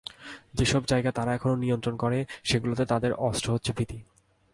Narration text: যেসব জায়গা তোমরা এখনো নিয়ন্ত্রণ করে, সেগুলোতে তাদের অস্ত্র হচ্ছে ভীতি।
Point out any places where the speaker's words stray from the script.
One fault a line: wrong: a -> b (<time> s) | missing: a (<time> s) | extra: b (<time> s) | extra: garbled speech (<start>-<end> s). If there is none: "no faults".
wrong: তোমরা -> তারা (1.1 s)